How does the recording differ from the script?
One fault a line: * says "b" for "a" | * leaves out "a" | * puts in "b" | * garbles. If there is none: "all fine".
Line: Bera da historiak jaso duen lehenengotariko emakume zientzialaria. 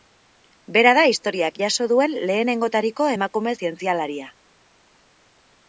all fine